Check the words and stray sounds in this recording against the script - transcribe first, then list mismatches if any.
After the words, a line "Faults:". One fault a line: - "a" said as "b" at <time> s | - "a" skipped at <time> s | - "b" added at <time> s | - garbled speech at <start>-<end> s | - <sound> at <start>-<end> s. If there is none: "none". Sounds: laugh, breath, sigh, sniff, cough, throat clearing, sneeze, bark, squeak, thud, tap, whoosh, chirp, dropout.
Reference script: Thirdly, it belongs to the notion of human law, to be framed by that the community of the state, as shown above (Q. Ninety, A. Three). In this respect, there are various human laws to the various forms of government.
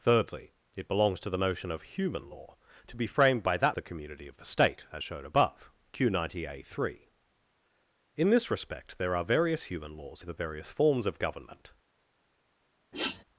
Thirdly, it belongs to the notion of human law, to be framed by that the community of the state, as shown above (Q. Ninety, A. Three). In this respect, there are various human laws to the various forms of government.
Faults:
- sniff at 12.9-13.2 s